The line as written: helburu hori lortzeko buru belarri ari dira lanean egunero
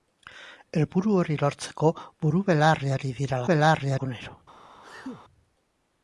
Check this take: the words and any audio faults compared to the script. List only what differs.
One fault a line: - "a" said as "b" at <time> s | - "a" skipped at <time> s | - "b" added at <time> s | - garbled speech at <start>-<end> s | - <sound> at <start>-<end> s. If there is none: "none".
- "lanean" said as "belarri" at 3.5 s
- sneeze at 4.8-5.2 s